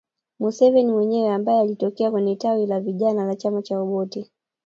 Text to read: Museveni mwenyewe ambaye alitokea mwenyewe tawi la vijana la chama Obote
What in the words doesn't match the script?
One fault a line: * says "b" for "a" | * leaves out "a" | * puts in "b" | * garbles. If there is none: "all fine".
* says "kwenye" for "mwenyewe"
* puts in "cha"